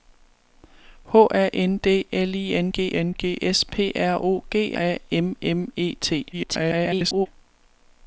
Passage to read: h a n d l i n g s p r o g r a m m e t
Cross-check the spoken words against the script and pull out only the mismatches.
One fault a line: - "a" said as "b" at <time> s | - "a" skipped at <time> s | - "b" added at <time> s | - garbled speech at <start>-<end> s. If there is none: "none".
- "n g" added at 3.0 s
- "r" skipped at 4.7 s
- garbled speech at 6.3-7.3 s